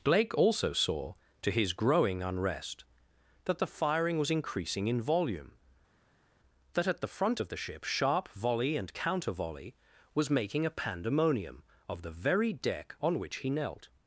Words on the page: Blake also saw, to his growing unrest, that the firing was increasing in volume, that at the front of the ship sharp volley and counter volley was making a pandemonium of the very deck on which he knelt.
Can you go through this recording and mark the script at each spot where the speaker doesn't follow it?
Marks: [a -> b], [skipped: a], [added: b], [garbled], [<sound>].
Blake also saw, to his growing unrest, that the firing was increasing in volume, that at the front of the ship sharp volley and counter volley was making a pandemonium of the very deck on which he knelt.